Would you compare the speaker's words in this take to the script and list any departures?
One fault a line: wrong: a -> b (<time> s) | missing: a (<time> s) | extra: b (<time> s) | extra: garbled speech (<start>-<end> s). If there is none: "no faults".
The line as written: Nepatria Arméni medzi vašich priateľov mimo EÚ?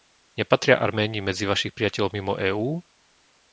no faults